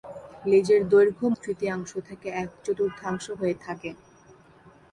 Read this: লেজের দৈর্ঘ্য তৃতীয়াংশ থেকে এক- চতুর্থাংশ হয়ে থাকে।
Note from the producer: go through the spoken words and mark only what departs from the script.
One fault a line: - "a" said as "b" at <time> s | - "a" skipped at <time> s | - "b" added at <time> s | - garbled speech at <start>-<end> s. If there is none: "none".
none